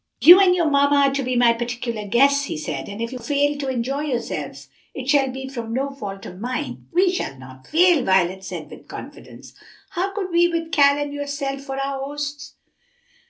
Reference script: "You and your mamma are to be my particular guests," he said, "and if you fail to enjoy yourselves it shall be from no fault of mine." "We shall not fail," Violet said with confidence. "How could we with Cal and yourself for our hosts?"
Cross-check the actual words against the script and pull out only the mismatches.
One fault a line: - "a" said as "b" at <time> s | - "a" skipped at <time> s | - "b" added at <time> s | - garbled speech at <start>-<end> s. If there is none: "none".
none